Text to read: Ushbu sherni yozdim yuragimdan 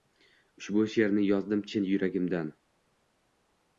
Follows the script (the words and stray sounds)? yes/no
no